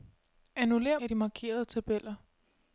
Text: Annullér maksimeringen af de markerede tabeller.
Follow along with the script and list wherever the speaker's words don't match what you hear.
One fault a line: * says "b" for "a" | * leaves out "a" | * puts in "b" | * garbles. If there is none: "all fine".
* leaves out "maksimeringen"